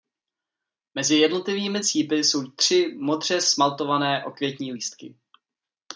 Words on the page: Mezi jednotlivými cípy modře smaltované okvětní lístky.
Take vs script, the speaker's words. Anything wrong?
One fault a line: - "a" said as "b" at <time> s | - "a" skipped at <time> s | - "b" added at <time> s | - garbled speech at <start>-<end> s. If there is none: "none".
- "jsou tři" added at 2.1 s